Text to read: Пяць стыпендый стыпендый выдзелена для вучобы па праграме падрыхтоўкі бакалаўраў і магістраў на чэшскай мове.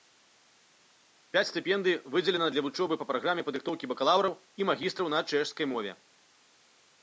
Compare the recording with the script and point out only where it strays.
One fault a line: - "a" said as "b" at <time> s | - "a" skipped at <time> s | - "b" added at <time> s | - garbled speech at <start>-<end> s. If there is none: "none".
- "стыпендый" skipped at 1.9 s